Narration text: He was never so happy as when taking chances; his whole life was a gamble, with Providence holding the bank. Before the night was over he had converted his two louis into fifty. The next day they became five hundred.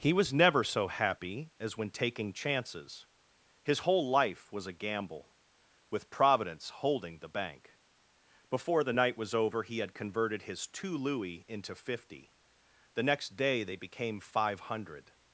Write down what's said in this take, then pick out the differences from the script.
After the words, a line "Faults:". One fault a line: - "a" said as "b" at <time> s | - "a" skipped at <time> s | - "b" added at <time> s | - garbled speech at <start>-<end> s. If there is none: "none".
He was never so happy as when taking chances; his whole life was a gamble, with Providence holding the bank. Before the night was over he had converted his two louis into fifty. The next day they became five hundred.
Faults:
none